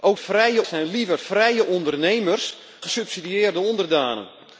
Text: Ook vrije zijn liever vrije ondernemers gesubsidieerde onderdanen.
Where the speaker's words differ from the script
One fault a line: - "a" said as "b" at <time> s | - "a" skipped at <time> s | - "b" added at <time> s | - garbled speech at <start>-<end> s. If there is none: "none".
none